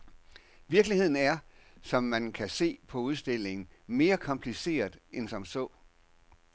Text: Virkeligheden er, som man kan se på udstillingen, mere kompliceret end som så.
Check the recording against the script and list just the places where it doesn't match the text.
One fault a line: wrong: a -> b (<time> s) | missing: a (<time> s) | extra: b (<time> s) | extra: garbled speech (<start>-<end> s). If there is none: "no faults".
no faults